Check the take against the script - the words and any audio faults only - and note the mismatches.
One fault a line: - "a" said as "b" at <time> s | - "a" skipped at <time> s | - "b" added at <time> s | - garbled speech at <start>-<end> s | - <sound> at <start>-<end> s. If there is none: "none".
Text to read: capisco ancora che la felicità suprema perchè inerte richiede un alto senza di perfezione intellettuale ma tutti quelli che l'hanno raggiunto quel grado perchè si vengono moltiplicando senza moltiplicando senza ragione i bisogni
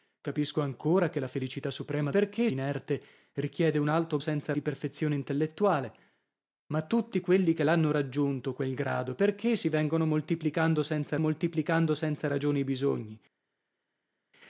none